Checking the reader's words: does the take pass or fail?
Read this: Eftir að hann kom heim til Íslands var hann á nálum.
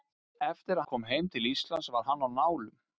fail